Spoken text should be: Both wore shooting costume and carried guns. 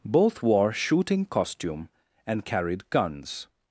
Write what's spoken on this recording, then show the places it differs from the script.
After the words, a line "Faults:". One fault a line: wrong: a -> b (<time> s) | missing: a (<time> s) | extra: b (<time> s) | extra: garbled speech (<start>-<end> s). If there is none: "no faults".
Both wore shooting costume and carried guns.
Faults:
no faults